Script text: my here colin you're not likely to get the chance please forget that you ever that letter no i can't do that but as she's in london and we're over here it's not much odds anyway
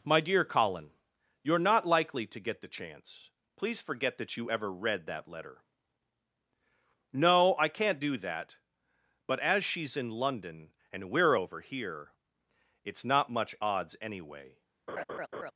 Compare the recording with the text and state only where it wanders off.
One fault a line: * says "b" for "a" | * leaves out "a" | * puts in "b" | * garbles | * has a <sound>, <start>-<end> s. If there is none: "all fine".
* says "dear" for "here"
* puts in "read"
* has a laugh, 14.9-15.5 s